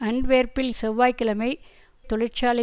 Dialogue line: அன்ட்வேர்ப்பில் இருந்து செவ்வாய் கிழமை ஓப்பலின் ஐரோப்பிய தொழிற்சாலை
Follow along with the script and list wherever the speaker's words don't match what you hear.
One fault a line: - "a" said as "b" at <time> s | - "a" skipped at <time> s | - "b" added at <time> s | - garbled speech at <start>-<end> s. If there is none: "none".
- "இருந்து" skipped at 0.7 s
- "ஓப்பலின் ஐரோப்பிய" skipped at 1.5 s